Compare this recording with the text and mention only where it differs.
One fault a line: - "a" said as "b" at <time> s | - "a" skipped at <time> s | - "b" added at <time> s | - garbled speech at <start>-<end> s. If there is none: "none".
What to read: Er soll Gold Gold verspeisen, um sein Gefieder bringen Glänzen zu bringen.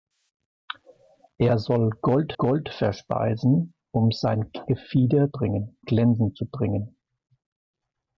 none